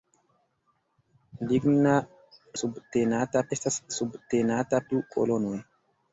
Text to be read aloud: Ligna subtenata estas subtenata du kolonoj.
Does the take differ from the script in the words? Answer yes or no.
no